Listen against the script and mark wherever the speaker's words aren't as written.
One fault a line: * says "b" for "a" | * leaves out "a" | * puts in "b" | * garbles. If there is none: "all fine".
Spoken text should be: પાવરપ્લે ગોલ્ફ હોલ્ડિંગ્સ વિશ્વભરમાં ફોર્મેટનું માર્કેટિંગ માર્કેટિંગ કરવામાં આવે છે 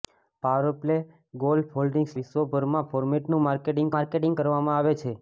all fine